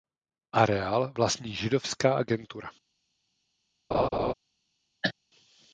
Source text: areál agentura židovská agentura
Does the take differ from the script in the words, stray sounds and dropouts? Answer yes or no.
yes